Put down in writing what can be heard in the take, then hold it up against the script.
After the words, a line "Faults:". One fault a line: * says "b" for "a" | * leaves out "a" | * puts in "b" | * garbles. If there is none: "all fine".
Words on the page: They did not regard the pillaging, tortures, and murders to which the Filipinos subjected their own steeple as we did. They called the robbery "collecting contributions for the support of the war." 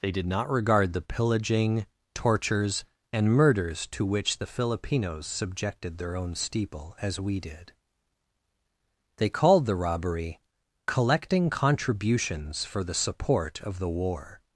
They did not regard the pillaging, tortures, and murders to which the Filipinos subjected their own steeple as we did. They called the robbery "collecting contributions for the support of the war."
Faults:
all fine